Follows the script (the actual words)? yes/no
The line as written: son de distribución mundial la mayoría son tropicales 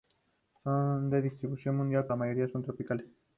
yes